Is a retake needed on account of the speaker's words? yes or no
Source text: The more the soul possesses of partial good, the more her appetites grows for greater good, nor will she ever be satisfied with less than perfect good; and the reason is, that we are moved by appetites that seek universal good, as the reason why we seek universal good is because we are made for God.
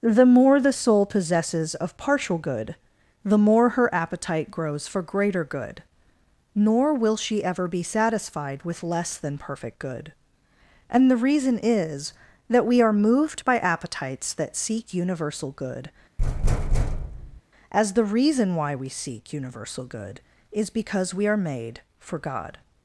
yes